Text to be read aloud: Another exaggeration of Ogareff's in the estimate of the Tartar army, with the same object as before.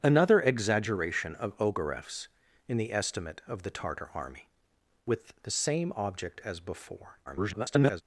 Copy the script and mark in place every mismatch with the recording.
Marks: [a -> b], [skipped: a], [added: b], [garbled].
Another exaggeration of Ogareff's in the estimate of the Tartar army, with the same object as before. [garbled]